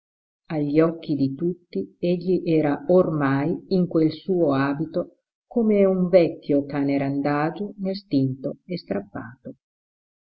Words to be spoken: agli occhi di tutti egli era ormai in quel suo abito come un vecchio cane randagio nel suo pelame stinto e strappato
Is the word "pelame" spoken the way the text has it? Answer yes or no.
no